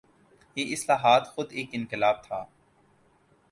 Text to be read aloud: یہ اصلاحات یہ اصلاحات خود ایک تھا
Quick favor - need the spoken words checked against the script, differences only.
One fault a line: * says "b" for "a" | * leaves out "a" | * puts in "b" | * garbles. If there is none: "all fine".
* leaves out "یہ اصلاحات"
* puts in "انقلاب"